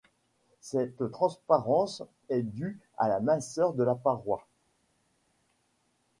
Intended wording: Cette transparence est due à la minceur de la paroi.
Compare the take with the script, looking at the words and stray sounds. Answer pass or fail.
pass